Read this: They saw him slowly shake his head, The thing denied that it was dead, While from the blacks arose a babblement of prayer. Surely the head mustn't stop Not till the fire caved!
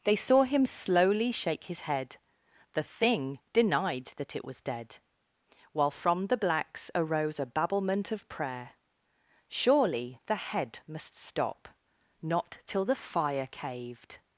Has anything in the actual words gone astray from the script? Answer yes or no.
yes